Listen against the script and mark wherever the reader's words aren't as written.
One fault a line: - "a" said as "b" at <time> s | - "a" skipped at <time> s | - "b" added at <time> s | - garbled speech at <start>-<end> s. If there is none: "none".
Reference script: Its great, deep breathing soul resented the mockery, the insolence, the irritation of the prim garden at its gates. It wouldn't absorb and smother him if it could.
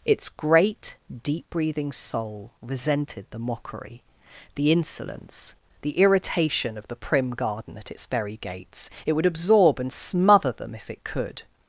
- "very" added at 8.1 s
- "wouldn't" said as "would" at 9.1 s
- "him" said as "them" at 10.5 s